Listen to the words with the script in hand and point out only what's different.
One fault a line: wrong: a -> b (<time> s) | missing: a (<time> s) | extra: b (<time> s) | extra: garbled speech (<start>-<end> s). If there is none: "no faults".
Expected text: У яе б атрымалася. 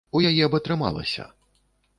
no faults